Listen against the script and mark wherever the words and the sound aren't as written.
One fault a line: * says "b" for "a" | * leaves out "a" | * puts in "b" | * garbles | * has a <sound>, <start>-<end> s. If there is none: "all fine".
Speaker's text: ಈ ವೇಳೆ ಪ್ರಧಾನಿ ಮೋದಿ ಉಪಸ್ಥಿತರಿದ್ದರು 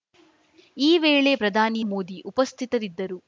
all fine